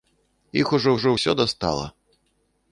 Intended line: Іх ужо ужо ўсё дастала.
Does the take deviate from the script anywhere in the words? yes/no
no